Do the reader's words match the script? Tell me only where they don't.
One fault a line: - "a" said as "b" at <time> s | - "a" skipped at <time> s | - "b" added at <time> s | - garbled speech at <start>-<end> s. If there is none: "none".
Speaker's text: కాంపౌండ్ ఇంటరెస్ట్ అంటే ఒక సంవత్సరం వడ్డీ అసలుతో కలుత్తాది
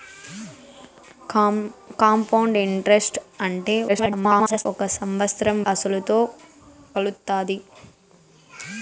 - garbled speech at 3.9-4.7 s
- "వడ్డీ" skipped at 5.6 s